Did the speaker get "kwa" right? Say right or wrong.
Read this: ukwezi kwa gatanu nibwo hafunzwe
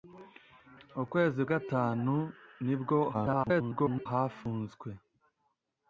wrong